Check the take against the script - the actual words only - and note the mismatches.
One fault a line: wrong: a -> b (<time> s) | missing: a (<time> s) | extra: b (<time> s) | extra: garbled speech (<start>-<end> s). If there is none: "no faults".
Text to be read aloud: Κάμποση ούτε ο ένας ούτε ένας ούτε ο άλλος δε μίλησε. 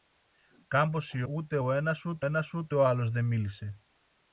no faults